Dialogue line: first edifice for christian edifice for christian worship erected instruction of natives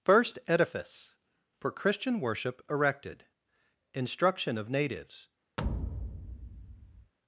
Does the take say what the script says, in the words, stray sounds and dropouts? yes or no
no